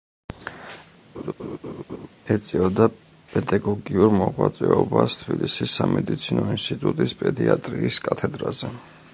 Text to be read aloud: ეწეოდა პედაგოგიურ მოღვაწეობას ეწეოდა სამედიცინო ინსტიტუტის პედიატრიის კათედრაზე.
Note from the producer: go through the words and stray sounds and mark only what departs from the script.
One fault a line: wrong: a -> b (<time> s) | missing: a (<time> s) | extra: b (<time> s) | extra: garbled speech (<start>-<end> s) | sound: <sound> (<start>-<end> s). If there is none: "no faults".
sound: laugh (1.1-2.1 s)
wrong: ეწეოდა -> თბილისის (5.2 s)